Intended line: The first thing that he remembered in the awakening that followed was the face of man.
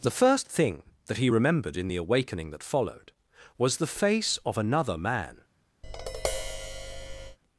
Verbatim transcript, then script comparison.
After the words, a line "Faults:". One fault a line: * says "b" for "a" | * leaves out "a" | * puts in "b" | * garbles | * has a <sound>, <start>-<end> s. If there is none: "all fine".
The first thing that he remembered in the awakening that followed was the face of another man.
Faults:
* puts in "another"
* has a tap, 5.8-7.4 s